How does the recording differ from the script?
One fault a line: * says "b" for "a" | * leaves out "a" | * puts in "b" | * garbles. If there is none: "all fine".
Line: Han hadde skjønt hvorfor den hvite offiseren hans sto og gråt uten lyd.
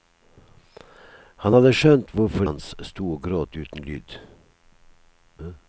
* leaves out "den hvite offiseren"